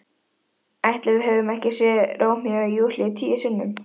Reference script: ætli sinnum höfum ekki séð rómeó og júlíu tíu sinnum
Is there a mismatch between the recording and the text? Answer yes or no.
yes